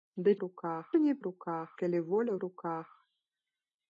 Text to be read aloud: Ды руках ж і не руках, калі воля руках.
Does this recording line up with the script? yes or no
yes